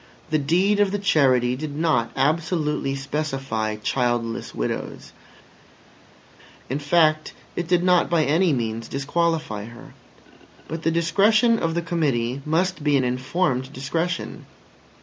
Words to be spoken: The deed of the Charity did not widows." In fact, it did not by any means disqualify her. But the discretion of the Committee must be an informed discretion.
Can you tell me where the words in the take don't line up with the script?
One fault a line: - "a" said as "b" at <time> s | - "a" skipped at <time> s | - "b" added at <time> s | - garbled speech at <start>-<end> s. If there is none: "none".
- "absolutely specify childless" added at 2.1 s